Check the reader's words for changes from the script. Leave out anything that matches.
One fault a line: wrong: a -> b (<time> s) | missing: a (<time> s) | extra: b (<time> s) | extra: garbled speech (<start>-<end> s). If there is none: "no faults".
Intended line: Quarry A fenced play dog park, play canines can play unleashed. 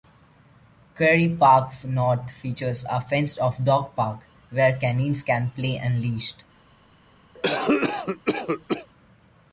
extra: Park North features (1.4 s)
wrong: play -> off (3.4 s)
wrong: play -> where (4.5 s)